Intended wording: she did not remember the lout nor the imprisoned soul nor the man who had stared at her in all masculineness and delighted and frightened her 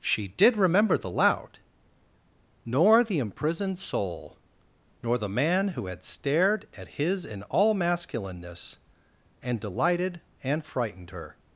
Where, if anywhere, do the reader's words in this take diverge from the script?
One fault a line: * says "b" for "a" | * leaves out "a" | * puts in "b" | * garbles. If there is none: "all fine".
* leaves out "not"
* says "his" for "her"